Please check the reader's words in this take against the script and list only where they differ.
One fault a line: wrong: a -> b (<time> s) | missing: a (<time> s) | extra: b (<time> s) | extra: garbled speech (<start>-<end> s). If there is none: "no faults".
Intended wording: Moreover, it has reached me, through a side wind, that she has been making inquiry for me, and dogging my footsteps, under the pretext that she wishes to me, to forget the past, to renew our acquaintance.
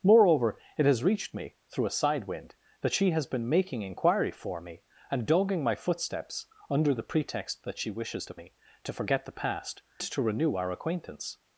no faults